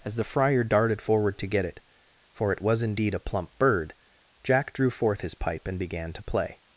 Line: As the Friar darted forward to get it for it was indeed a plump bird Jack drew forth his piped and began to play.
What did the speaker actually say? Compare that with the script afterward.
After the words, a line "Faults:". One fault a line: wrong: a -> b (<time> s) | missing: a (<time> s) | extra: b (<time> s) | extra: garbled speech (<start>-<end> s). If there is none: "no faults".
As the Friar darted forward to get it for it was indeed a plump bird Jack drew forth his pipe and began to play.
Faults:
wrong: piped -> pipe (5.3 s)